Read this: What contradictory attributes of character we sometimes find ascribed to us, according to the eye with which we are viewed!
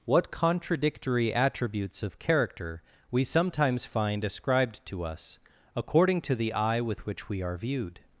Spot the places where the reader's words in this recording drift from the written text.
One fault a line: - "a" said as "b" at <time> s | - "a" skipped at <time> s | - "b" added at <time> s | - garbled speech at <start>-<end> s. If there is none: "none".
none